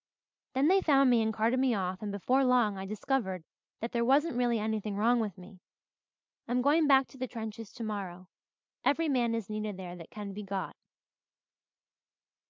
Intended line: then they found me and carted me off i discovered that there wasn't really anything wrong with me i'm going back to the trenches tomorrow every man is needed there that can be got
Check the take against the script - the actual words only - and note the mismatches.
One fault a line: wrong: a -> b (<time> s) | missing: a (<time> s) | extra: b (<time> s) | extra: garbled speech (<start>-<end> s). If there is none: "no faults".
extra: and before long (2.0 s)